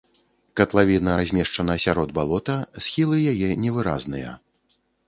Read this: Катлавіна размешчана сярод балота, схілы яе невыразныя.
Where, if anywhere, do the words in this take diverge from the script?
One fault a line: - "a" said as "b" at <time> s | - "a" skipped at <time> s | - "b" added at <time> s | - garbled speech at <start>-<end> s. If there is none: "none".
none